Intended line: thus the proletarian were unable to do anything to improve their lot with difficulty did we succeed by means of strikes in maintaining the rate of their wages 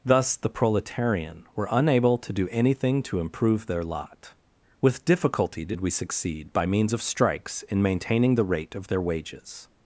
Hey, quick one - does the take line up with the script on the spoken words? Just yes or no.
yes